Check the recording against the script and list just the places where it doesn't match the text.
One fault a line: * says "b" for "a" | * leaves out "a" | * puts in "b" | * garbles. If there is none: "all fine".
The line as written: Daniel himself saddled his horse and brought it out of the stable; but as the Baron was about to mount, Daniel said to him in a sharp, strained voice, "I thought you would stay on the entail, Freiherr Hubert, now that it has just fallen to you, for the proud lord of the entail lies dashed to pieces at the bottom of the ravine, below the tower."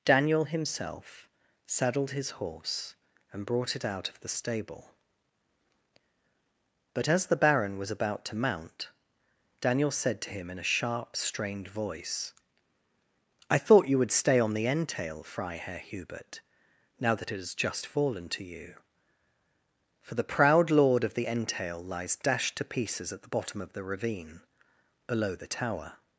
all fine